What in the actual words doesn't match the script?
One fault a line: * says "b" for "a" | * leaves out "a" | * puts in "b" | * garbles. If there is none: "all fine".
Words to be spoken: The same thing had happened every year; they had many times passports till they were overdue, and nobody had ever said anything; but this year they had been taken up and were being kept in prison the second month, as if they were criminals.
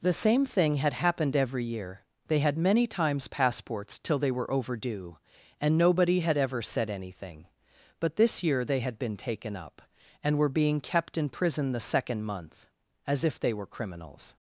all fine